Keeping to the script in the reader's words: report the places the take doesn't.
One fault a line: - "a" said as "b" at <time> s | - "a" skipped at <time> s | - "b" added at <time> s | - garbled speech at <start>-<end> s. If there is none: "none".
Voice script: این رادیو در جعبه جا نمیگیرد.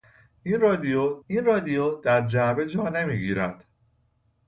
- "این رادیو" added at 1.3 s